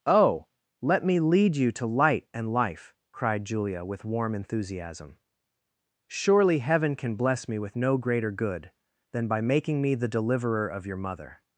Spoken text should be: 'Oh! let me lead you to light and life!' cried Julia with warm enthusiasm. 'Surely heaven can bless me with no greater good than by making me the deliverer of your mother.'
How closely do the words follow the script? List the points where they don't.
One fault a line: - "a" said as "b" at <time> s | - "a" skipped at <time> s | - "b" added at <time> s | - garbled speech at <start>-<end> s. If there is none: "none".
none